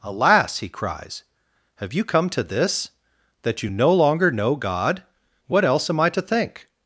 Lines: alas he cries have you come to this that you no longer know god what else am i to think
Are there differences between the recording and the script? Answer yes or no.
no